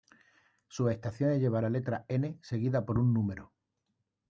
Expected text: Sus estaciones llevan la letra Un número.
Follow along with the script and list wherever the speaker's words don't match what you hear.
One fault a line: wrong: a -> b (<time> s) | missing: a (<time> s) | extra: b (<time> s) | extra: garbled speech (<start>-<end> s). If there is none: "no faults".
extra: N seguida por (2.1 s)